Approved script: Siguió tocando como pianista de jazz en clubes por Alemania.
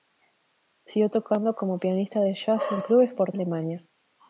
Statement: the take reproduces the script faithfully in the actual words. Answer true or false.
true